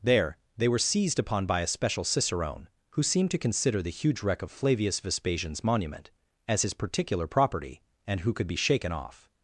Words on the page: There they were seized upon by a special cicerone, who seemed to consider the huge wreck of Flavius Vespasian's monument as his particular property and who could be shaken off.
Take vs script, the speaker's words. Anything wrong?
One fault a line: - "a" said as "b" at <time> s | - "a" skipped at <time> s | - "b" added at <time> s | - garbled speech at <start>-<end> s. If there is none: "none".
none